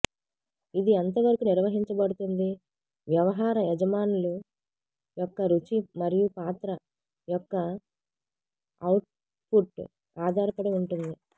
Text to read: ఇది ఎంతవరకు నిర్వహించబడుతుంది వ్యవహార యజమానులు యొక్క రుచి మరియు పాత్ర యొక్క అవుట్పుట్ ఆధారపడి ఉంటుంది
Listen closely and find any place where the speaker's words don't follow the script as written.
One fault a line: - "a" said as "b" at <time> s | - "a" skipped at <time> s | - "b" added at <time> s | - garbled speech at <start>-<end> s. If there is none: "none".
none